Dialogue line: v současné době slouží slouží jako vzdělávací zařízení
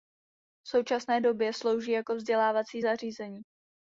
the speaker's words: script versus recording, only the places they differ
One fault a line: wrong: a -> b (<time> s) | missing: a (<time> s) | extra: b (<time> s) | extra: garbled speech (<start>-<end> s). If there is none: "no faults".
missing: slouží (1.9 s)